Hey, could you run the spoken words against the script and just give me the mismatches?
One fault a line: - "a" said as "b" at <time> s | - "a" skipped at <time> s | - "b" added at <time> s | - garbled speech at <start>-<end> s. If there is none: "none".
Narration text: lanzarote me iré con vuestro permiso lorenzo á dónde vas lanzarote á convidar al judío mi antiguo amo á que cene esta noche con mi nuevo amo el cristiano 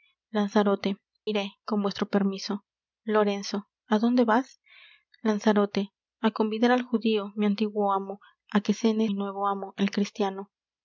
- "me" skipped at 1.0 s
- "esta noche con" skipped at 9.1 s